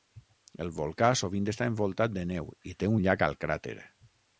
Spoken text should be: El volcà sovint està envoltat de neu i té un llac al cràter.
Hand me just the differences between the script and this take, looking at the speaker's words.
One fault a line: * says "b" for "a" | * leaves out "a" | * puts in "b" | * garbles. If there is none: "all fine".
all fine